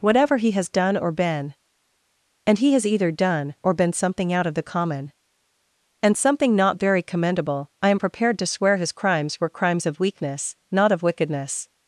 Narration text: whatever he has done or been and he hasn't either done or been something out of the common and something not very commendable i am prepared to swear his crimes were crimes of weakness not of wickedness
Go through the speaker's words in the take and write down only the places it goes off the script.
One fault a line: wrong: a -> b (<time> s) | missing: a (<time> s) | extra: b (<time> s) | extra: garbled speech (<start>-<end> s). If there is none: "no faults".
wrong: hasn't -> has (2.7 s)